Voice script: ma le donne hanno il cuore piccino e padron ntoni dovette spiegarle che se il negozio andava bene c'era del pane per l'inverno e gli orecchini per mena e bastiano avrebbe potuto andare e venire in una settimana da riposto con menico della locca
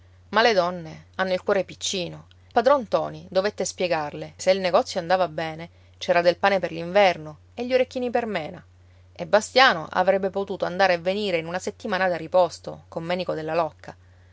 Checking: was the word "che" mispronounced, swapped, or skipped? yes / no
yes